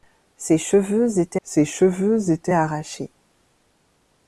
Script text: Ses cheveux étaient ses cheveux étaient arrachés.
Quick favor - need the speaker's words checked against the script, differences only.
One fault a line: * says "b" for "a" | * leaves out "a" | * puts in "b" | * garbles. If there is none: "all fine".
all fine